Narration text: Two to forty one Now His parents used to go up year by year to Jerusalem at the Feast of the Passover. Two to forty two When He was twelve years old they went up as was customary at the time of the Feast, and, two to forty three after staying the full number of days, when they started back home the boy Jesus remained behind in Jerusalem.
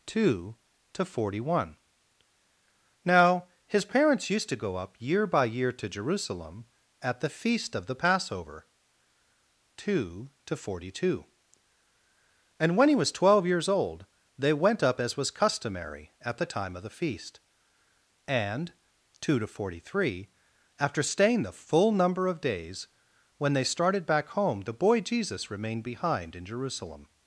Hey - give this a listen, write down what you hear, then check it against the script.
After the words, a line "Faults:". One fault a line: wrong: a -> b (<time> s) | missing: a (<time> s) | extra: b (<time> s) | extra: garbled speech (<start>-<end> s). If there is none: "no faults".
Two to forty one Now His parents used to go up year by year to Jerusalem at the Feast of the Passover. Two to forty two And when He was twelve years old they went up as was customary at the time of the Feast, and, two to forty three after staying the full number of days, when they started back home the boy Jesus remained behind in Jerusalem.
Faults:
extra: And (12.6 s)